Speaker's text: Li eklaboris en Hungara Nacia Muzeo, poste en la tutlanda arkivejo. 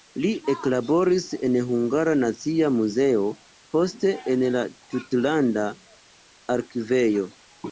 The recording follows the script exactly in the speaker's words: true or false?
true